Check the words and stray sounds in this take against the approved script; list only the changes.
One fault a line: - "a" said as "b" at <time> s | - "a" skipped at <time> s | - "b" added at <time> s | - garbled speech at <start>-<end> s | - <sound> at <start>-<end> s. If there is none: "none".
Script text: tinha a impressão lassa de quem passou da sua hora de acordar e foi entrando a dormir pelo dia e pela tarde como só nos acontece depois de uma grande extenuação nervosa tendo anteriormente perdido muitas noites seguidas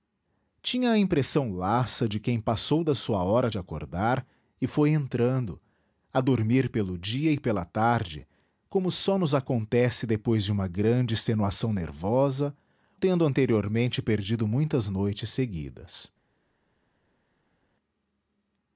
none